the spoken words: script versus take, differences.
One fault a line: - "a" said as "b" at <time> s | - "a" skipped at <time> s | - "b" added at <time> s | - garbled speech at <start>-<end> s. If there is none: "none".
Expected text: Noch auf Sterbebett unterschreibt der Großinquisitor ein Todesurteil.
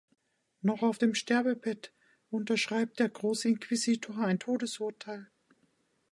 - "dem" added at 1.0 s